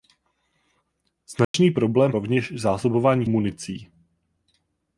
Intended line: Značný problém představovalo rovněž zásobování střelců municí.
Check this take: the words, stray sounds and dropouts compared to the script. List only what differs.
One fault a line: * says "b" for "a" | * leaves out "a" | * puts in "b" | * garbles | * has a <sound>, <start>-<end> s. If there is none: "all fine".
* has a dropout, 1.4-1.5 s
* leaves out "představovalo"
* leaves out "střelců"